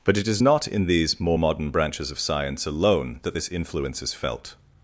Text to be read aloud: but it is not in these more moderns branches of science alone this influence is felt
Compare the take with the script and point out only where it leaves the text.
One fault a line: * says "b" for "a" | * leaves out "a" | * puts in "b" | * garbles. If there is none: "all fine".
* says "modern" for "moderns"
* puts in "that"